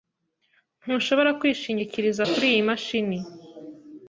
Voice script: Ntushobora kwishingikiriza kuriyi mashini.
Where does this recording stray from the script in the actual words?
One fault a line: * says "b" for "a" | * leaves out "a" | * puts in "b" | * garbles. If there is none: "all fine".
all fine